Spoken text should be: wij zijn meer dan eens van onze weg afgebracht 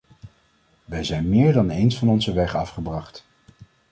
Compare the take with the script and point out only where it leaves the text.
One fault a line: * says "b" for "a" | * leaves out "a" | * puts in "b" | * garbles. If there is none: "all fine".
all fine